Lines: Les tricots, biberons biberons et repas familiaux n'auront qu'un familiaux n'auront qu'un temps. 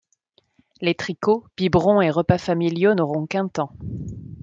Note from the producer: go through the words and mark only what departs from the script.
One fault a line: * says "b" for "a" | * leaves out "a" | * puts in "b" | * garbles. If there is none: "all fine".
* leaves out "biberons"
* leaves out "familiaux n'auront qu'un"